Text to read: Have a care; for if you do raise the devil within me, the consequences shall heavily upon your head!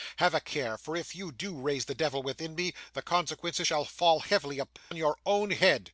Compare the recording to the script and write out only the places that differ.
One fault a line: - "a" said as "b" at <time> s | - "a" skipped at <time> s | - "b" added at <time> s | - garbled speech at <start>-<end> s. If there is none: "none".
- "fall" added at 3.9 s
- "own" added at 5.2 s